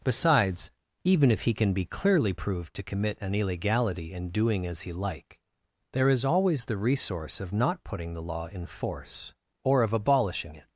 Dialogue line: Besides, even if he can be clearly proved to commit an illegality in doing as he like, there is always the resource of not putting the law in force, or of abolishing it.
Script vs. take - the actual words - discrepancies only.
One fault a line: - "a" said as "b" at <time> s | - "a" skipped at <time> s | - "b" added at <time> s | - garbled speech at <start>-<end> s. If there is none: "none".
none